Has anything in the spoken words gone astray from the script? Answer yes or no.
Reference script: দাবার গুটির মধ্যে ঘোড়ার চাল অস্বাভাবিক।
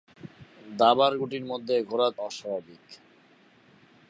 yes